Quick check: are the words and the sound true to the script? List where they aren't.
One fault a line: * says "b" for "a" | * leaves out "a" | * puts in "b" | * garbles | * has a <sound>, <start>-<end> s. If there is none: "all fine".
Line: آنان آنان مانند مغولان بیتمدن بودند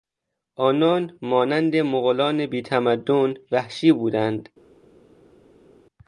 * leaves out "آنان"
* puts in "وحشی"